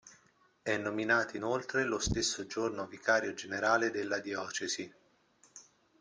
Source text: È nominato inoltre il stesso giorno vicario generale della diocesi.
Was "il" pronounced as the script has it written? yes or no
no